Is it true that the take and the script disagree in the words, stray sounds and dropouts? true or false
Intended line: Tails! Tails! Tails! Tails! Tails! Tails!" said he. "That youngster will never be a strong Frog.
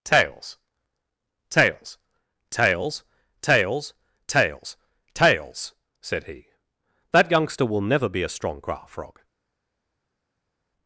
true